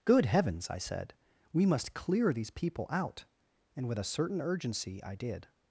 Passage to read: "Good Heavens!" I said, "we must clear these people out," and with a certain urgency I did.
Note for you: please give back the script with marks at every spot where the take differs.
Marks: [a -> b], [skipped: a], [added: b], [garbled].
"Good Heavens!" I said, "we must clear these people out," and with a certain urgency I did.